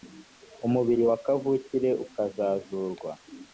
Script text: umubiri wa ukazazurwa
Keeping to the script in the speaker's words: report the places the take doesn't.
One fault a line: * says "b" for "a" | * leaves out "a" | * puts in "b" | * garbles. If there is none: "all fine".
* puts in "kavukire"